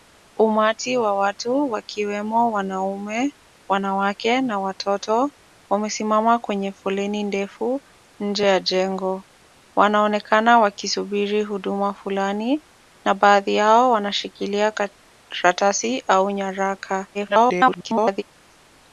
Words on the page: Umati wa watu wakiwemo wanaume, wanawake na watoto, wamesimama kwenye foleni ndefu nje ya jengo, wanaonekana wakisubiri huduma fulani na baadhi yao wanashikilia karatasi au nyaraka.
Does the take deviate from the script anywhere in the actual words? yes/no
yes